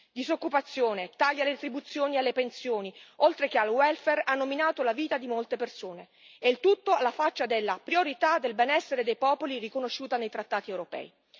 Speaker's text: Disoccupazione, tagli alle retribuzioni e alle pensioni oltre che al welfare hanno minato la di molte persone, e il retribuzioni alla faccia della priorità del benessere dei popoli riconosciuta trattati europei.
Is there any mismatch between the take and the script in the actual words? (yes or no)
yes